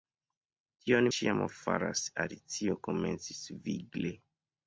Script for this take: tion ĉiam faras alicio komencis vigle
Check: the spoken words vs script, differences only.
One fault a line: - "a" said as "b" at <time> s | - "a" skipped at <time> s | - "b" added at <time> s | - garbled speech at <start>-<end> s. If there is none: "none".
none